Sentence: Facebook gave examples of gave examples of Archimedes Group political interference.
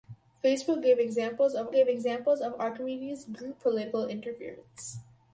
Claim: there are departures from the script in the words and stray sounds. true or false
false